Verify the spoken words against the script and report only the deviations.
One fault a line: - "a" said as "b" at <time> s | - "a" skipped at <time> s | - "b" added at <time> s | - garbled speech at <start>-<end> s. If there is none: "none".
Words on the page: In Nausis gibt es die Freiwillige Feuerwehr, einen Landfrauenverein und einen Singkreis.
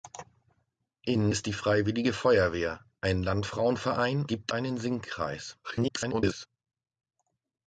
- "Nausis gibt" skipped at 1.3 s
- "und" said as "gibt" at 4.3 s
- garbled speech at 5.6-6.5 s